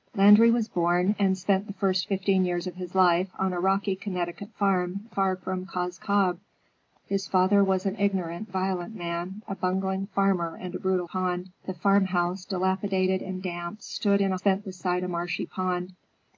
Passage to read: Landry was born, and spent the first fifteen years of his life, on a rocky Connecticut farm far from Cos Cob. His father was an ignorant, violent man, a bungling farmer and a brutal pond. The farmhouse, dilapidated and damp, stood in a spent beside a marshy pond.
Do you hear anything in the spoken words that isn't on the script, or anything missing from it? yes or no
no